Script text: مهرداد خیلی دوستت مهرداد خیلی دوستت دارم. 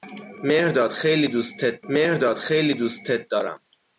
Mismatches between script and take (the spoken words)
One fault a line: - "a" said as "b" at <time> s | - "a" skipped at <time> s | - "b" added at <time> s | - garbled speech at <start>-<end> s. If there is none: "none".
none